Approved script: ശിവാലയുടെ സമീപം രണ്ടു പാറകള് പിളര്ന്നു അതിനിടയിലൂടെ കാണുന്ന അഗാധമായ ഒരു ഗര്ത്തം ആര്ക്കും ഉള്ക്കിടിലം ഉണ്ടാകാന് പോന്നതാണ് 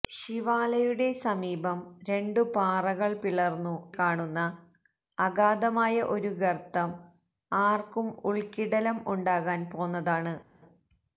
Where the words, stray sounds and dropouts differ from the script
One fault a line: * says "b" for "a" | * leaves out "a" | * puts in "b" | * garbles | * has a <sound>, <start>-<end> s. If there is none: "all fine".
* leaves out "അതിനിടയിലൂടെ"